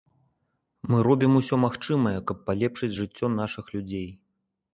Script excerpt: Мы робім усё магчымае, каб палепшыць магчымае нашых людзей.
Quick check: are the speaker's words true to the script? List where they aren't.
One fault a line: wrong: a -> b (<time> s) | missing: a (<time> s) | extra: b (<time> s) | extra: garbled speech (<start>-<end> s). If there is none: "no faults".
wrong: магчымае -> жыццё (3.0 s)